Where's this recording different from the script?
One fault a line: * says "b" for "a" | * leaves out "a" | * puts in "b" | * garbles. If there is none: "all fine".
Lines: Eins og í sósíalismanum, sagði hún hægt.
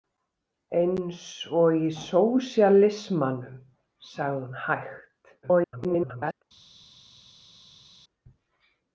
* garbles